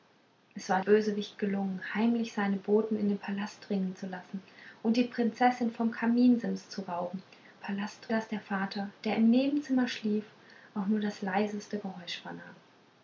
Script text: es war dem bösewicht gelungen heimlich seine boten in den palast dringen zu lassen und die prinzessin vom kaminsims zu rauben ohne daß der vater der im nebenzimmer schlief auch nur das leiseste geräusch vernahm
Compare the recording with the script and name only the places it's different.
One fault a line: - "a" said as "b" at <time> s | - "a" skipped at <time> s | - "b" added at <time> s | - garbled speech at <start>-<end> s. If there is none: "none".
- "dem" skipped at 0.8 s
- "ohne" said as "palast" at 7.6 s